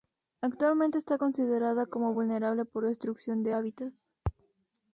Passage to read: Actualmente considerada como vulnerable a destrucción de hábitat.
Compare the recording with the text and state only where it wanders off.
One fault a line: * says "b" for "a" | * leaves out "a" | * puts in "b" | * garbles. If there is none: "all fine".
* puts in "está"
* says "por" for "a"